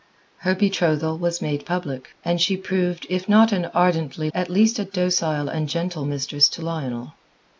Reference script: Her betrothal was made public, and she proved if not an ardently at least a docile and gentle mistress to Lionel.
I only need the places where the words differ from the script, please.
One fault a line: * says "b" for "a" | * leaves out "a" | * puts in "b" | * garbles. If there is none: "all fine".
all fine